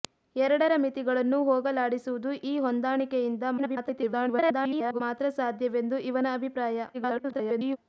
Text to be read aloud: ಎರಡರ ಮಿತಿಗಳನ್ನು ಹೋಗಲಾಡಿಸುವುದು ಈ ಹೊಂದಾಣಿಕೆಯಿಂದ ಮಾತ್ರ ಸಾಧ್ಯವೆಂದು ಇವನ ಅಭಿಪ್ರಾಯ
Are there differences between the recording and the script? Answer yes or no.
yes